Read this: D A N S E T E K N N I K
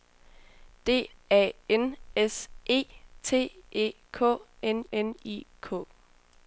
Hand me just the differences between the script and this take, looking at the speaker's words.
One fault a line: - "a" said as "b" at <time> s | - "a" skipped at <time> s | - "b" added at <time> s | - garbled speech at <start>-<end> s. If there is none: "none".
none